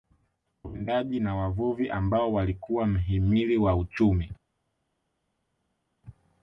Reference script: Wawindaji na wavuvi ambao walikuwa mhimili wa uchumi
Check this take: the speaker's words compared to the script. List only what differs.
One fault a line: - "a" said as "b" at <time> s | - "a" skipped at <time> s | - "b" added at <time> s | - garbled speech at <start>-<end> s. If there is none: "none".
none